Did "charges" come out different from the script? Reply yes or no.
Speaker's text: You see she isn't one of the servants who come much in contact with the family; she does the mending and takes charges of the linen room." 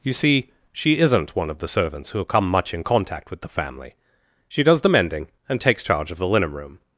yes